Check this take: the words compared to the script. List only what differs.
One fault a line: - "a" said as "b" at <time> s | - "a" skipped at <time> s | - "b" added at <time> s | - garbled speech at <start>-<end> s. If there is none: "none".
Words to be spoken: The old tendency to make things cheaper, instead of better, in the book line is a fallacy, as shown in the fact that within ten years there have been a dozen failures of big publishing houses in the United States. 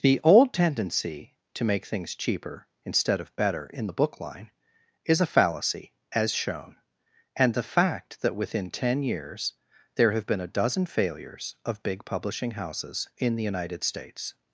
- "in" said as "and" at 7.4 s